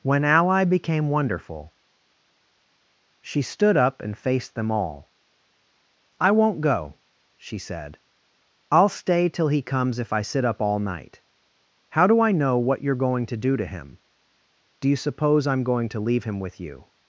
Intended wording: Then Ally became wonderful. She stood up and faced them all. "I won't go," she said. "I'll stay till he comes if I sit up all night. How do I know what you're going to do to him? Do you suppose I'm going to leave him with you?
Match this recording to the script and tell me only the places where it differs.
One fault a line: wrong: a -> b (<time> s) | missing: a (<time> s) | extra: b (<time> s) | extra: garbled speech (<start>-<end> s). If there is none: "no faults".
wrong: Then -> When (0.0 s)